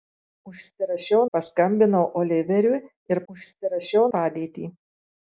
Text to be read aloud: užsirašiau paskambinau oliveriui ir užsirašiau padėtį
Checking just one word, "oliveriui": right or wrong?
right